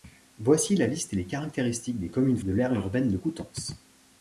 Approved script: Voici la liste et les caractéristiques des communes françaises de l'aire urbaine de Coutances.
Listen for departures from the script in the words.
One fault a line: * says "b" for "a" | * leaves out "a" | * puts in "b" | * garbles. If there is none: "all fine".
* leaves out "françaises"